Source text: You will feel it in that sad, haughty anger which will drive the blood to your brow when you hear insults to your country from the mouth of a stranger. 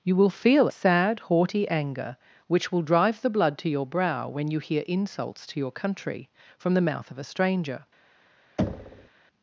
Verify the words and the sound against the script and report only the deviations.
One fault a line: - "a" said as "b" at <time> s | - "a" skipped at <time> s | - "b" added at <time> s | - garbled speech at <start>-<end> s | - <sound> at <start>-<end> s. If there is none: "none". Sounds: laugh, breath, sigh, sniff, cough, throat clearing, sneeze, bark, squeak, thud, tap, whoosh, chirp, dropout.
- "it in that" skipped at 0.7 s
- thud at 8.6-9.1 s